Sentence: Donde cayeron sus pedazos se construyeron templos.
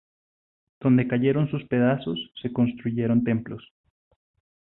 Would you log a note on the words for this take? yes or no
no